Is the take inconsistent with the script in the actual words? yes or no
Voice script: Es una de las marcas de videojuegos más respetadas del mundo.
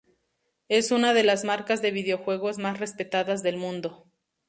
no